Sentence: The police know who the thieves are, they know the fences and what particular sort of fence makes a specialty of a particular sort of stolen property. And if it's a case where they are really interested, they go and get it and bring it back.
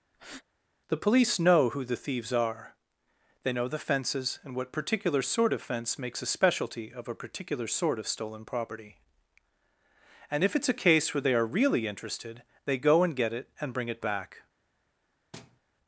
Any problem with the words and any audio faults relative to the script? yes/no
yes